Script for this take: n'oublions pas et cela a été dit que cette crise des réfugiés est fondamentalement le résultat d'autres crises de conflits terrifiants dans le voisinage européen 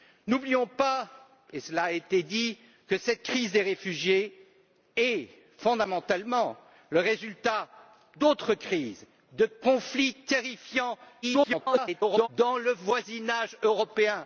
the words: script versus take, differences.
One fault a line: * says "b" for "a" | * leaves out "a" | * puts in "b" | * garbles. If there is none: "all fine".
* garbles